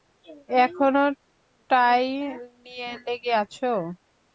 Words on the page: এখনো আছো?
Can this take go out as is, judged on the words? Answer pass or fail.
fail